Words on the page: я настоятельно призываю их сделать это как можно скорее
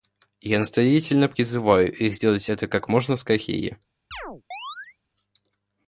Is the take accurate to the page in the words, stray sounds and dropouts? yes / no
no